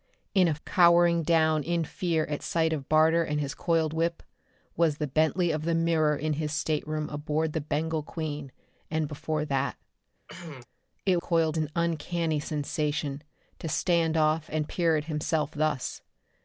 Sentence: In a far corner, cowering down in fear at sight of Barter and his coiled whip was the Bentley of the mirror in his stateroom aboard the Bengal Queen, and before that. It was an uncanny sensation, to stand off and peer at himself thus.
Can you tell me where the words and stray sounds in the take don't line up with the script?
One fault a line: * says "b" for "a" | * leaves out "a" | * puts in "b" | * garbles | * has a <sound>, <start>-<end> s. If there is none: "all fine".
* leaves out "far corner"
* has a cough, 10.3-10.7 s
* says "coiled" for "was"